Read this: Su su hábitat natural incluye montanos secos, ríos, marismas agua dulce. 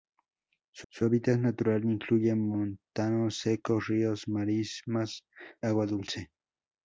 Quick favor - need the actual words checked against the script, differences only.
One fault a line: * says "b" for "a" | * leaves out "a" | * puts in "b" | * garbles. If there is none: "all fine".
all fine